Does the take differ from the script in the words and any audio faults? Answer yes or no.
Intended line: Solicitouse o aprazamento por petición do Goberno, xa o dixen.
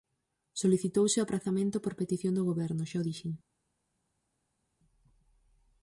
no